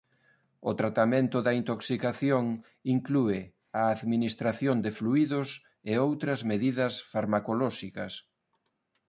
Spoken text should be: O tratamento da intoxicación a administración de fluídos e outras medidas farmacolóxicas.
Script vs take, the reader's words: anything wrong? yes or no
yes